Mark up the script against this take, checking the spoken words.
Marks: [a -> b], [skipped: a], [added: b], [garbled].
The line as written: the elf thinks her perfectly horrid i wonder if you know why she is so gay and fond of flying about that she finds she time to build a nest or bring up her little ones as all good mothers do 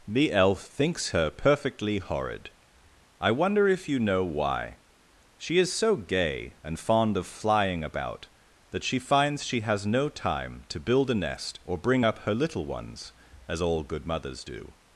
the elf thinks her perfectly horrid i wonder if you know why she is so gay and fond of flying about that she finds she [added: has no] time to build a nest or bring up her little ones as all good mothers do